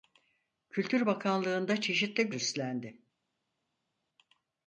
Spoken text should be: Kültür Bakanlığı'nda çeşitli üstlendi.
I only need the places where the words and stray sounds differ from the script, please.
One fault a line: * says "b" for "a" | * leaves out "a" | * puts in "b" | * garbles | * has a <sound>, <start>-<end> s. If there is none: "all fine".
all fine